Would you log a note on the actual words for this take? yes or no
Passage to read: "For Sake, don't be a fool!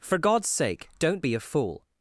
yes